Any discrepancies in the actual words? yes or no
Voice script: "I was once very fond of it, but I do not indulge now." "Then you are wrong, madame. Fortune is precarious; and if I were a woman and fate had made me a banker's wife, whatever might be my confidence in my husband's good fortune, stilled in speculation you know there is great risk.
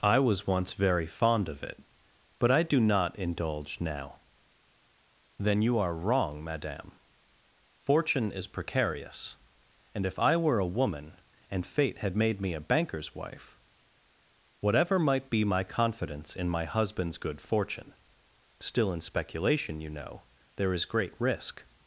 yes